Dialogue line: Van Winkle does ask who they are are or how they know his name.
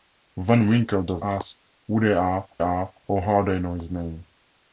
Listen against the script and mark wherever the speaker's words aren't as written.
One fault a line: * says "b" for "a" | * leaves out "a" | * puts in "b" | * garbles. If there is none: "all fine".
all fine